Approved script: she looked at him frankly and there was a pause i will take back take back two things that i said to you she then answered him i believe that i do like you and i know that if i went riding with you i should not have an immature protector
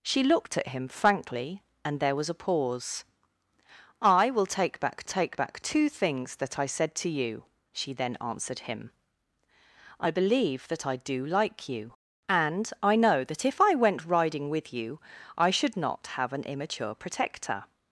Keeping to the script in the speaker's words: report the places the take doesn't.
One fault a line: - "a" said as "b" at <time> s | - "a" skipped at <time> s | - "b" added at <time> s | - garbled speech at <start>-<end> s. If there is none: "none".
none